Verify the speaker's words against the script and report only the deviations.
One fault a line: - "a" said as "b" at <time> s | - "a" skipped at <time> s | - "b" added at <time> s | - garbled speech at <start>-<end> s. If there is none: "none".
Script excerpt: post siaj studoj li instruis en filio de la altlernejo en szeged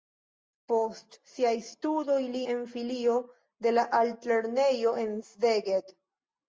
- "instruis" skipped at 2.4 s